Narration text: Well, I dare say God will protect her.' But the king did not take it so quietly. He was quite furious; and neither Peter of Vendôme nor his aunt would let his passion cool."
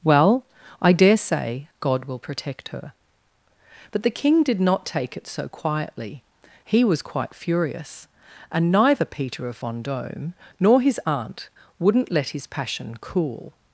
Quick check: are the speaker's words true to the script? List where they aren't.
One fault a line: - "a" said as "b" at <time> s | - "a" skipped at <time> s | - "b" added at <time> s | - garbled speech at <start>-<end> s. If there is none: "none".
- "would" said as "wouldn't" at 11.8 s